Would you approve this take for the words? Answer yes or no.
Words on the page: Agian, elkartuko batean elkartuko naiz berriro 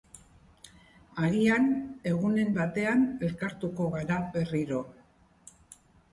no